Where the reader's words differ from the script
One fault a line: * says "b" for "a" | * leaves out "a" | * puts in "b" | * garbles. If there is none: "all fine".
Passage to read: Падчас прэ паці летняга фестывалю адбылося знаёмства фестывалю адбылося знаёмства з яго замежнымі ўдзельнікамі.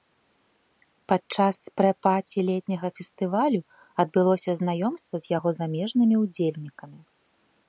* leaves out "фестывалю адбылося знаёмства"